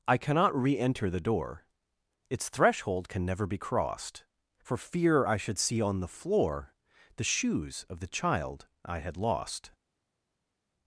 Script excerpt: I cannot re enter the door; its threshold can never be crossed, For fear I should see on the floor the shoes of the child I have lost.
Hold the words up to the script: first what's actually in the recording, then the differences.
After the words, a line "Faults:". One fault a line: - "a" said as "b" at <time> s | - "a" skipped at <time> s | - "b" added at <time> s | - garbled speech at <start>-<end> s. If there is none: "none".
I cannot re enter the door; its threshold can never be crossed, For fear I should see on the floor the shoes of the child I had lost.
Faults:
- "have" said as "had" at 9.0 s